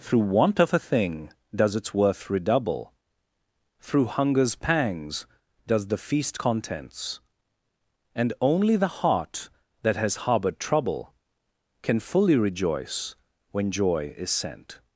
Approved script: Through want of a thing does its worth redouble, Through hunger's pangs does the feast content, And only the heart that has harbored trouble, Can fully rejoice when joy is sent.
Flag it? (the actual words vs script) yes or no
yes